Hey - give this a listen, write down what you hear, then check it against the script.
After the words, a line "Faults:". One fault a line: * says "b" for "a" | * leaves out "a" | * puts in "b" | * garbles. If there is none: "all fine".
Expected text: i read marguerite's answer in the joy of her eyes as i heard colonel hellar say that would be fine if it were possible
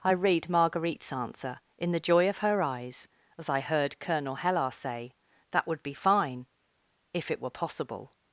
i read marguerite's answer in the joy of her eyes as i heard colonel hellar say that would be fine if it were possible
Faults:
all fine